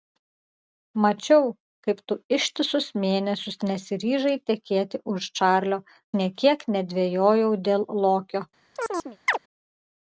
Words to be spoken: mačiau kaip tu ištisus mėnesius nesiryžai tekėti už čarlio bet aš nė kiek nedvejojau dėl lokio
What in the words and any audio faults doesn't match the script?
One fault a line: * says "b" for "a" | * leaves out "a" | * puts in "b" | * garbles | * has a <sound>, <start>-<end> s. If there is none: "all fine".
* leaves out "bet aš"
* has a chirp, 8.8-9.4 s